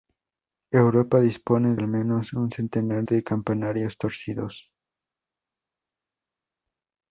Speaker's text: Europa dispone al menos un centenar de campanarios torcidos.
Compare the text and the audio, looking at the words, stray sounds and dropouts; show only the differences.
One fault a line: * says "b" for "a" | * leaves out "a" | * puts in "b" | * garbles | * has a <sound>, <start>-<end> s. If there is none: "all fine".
all fine